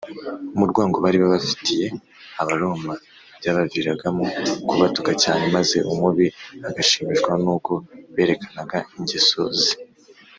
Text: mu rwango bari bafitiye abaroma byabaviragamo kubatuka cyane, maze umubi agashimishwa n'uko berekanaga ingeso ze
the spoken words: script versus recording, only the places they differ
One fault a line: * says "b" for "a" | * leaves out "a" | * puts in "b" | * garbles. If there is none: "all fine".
all fine